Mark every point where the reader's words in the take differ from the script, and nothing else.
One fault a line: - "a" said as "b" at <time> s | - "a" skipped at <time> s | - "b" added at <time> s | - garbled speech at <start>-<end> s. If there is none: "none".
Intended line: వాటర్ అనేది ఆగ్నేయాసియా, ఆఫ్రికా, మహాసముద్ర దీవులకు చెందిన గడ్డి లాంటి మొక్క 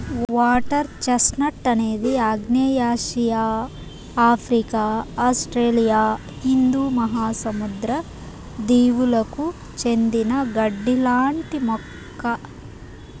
- "చెస్ట్నట్" added at 1.0 s
- "ఆస్ట్రేలియా హిందూ" added at 5.3 s